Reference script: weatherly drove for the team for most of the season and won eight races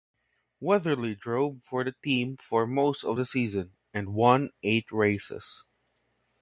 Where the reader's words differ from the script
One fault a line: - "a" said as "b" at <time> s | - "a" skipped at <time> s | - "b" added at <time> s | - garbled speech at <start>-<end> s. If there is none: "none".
none